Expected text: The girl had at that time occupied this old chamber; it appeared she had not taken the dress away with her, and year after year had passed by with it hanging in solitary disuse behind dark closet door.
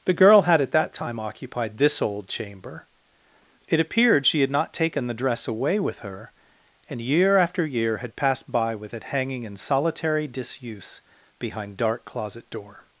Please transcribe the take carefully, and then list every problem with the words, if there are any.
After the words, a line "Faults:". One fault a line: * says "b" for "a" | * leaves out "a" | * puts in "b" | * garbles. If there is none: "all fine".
The girl had at that time occupied this old chamber; it appeared she had not taken the dress away with her, and year after year had passed by with it hanging in solitary disuse behind dark closet door.
Faults:
all fine